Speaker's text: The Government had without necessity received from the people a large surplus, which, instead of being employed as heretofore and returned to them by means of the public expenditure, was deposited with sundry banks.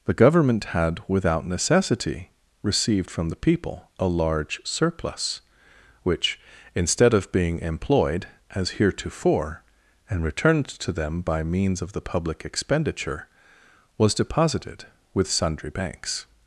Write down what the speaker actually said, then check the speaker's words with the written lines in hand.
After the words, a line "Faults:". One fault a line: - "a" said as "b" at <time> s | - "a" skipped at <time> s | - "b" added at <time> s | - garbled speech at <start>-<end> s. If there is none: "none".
The Government had without necessity received from the people a large surplus, which, instead of being employed as heretofore and returned to them by means of the public expenditure, was deposited with sundry banks.
Faults:
none